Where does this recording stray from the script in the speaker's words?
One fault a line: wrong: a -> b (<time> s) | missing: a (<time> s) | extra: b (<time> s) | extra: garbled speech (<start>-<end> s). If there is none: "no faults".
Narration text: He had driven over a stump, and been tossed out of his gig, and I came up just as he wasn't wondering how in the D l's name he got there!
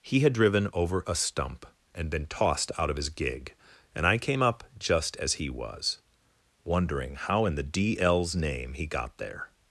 wrong: wasn't -> was (5.5 s)